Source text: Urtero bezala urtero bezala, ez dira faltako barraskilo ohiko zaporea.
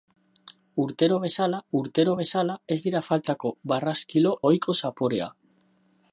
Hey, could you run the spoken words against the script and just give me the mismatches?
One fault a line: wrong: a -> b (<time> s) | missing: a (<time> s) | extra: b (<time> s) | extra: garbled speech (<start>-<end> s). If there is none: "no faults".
no faults